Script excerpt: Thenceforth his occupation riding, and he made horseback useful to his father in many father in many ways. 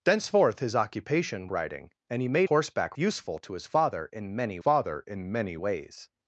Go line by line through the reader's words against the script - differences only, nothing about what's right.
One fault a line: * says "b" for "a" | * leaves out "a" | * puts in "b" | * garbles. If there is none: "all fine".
all fine